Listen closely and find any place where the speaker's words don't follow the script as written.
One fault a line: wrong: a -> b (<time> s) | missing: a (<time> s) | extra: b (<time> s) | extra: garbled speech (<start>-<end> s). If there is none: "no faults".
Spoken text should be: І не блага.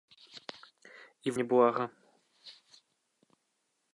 no faults